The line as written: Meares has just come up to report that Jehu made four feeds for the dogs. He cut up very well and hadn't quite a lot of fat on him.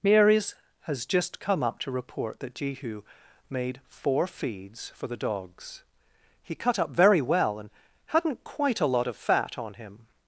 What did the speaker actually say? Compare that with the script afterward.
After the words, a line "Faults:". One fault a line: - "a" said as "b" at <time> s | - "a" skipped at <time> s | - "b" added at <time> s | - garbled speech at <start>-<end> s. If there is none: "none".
Meares has just come up to report that Jehu made four feeds for the dogs. He cut up very well and hadn't quite a lot of fat on him.
Faults:
none